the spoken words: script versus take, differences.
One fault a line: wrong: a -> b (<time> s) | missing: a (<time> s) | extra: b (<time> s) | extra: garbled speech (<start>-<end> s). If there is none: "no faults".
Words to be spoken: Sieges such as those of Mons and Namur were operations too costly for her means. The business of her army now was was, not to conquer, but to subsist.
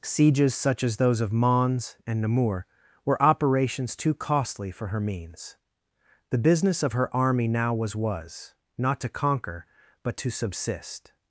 no faults